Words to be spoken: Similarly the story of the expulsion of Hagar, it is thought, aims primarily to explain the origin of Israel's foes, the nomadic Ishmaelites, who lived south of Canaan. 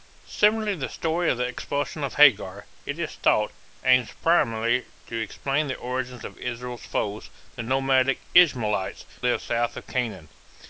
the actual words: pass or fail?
fail